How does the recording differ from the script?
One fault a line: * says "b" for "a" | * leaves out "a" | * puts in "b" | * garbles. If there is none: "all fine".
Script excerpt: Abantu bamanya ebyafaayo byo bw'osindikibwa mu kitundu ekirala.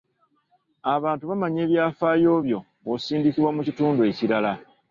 all fine